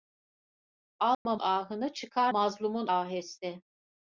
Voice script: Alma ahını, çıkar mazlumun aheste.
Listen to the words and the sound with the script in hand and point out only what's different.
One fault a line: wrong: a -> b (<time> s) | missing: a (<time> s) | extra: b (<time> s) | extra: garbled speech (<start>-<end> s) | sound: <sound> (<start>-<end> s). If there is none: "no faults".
sound: dropout (1.1-1.3 s)